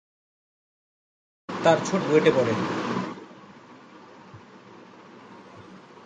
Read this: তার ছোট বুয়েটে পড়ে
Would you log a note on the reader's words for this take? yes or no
no